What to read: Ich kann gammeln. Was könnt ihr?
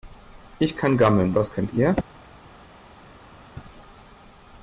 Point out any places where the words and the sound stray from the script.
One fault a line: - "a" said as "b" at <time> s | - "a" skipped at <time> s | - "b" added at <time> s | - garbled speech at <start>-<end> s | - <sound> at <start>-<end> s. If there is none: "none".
none